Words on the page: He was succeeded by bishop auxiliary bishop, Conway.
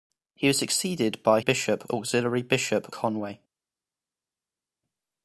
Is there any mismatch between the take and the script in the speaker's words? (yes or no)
no